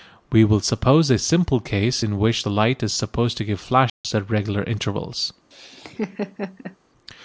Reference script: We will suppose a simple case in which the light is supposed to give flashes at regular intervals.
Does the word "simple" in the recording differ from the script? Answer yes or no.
no